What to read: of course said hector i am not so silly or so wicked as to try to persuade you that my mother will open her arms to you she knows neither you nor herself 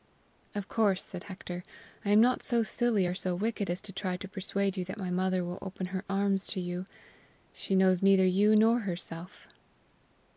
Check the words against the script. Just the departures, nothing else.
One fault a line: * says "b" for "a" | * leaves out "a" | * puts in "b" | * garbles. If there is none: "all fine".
all fine